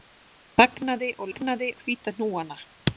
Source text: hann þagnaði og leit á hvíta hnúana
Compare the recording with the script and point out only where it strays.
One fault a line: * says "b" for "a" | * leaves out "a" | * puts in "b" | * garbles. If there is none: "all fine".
* says "þagnaði" for "leit"